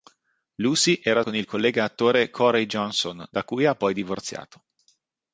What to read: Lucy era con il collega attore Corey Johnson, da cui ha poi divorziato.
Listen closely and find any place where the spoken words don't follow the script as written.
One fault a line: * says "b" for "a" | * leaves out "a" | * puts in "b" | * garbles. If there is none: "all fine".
all fine